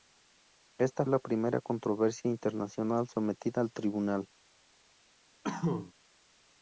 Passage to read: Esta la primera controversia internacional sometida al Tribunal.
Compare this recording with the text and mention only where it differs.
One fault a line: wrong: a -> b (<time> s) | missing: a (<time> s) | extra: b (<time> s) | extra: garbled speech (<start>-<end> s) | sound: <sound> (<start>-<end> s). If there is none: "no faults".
sound: cough (5.4-5.9 s)